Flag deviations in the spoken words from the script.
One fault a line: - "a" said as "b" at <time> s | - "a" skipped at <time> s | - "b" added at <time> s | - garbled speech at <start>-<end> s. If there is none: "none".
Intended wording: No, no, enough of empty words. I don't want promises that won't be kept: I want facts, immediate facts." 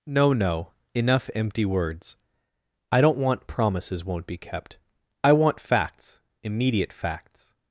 - "of" skipped at 1.3 s
- "that" skipped at 4.0 s